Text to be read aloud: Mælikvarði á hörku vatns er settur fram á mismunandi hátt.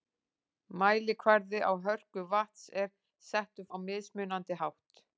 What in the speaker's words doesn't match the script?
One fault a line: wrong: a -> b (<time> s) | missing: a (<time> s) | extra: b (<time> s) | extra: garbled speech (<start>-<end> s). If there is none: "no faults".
missing: fram (3.7 s)